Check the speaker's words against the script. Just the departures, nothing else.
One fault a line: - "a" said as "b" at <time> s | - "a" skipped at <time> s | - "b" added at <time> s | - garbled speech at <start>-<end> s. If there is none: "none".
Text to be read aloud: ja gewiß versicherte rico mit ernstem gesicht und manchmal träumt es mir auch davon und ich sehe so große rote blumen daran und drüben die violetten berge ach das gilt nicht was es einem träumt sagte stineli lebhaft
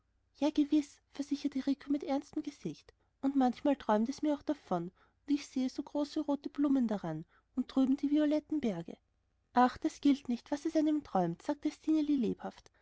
none